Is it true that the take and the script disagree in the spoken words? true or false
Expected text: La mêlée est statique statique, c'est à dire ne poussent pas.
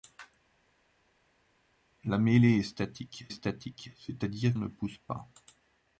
false